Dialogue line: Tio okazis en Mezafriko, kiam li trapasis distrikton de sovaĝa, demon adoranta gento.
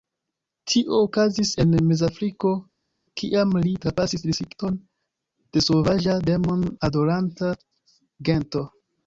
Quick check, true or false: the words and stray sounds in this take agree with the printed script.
true